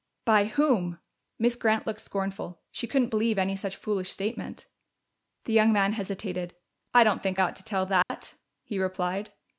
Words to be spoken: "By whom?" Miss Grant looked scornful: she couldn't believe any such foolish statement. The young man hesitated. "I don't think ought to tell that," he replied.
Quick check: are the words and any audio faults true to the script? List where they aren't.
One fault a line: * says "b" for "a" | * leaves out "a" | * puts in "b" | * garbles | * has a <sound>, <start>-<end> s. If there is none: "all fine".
* has a dropout, 8.0-8.1 s